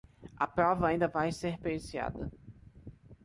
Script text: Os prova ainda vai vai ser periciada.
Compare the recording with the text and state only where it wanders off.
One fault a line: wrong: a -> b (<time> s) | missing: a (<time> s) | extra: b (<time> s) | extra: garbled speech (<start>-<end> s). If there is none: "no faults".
wrong: Os -> A (0.3 s)
missing: vai (1.3 s)